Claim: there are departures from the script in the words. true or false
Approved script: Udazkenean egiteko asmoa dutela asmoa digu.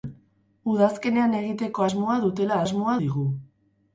false